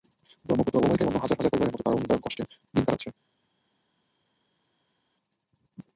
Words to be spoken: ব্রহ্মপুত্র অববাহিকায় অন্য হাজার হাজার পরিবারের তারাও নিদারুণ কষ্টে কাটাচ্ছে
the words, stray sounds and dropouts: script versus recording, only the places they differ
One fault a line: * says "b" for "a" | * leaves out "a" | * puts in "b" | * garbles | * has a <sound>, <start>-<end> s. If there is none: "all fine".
* puts in "মতো"
* puts in "দিন"